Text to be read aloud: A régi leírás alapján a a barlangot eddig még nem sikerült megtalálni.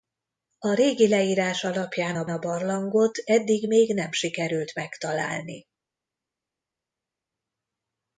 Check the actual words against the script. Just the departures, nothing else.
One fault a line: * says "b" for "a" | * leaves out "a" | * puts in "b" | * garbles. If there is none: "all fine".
all fine